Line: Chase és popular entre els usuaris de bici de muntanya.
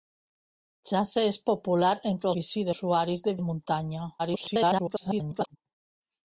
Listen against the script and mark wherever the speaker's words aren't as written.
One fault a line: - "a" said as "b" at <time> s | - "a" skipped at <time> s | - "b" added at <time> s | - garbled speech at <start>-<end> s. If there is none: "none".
- "els" said as "bici" at 2.4 s
- "bici" skipped at 3.4 s
- garbled speech at 4.2-5.6 s